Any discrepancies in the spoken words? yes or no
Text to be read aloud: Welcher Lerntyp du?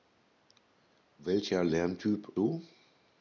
no